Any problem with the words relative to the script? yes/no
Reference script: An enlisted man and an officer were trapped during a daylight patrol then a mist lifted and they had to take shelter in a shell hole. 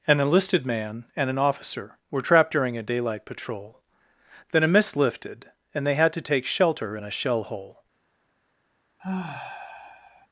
no